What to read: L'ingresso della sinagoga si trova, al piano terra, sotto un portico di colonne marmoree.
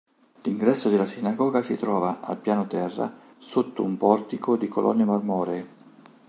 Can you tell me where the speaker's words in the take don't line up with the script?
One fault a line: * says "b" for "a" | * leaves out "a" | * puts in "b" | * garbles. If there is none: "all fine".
all fine